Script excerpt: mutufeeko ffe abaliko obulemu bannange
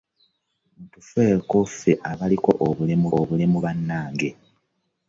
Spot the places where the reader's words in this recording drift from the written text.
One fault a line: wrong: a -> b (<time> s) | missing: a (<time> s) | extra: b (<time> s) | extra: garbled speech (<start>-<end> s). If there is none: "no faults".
extra: obulemu (3.2 s)